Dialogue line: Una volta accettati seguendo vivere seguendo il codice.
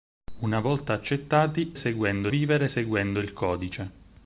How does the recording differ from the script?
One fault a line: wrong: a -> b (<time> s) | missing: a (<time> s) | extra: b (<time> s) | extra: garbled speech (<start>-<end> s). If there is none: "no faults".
no faults